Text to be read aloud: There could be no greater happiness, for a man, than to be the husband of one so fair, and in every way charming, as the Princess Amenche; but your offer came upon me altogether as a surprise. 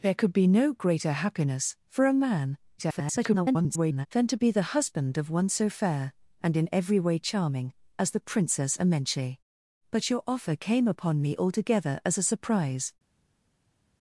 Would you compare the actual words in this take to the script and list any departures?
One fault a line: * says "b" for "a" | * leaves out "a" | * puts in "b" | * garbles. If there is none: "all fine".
* garbles